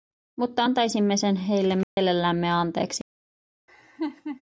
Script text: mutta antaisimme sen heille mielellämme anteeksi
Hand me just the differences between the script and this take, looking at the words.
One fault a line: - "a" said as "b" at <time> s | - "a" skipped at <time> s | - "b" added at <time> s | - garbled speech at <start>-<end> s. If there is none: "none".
none